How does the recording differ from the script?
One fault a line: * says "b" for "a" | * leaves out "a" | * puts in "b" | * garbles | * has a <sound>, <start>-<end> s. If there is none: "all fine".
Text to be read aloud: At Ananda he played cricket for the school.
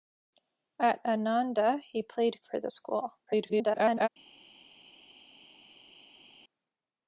* leaves out "cricket"
* garbles